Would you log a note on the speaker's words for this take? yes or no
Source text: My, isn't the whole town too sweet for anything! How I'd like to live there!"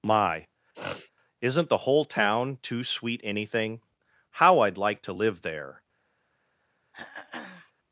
yes